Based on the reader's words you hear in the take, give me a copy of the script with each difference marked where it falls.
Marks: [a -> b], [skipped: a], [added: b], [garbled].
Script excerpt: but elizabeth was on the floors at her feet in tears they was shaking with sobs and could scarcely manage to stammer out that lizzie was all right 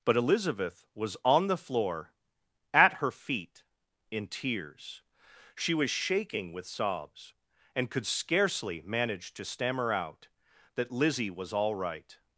but elizabeth was on the [floors -> floor] at her feet in tears [they -> she] was shaking with sobs and could scarcely manage to stammer out that lizzie was all right